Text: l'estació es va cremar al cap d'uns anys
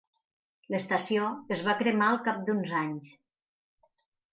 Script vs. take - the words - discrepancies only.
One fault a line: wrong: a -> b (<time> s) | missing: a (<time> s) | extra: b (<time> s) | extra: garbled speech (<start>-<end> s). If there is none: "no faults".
no faults